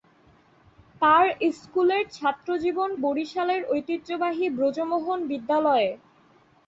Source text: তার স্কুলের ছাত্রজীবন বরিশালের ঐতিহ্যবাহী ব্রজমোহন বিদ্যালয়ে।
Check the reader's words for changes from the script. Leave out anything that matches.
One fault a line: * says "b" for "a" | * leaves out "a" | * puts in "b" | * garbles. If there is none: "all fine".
all fine